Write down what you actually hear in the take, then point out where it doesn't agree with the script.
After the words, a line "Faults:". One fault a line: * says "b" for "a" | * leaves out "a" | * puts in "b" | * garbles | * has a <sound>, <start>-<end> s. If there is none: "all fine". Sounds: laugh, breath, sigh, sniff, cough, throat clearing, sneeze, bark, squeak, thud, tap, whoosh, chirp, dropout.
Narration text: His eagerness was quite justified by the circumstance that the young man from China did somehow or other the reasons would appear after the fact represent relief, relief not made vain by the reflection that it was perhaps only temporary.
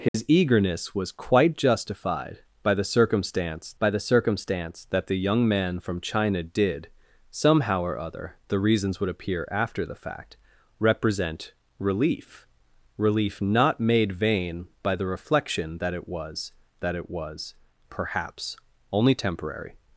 His eagerness was quite justified by the circumstance by the circumstance that the young man from China did somehow or other the reasons would appear after the fact represent relief, relief not made vain by the reflection that it was that it was perhaps only temporary.
Faults:
* has a dropout, 0.1-0.1 s
* puts in "by the circumstance"
* puts in "that it was"